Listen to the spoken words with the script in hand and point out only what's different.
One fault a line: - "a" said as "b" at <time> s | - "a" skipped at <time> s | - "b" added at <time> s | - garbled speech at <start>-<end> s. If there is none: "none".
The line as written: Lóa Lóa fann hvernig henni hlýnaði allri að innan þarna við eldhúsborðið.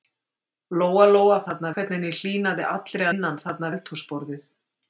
- "fann" said as "þarna" at 1.4 s
- "að" skipped at 3.1 s
- "við" skipped at 3.7 s